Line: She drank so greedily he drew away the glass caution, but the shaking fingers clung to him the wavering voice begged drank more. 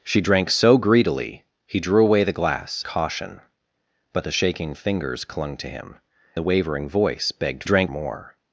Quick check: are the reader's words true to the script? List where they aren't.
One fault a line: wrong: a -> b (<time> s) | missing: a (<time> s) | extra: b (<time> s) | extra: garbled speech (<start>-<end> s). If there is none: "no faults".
no faults